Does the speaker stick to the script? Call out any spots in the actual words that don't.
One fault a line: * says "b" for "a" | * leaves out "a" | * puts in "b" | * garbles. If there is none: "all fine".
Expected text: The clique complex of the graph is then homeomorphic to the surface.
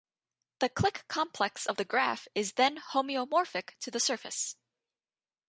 all fine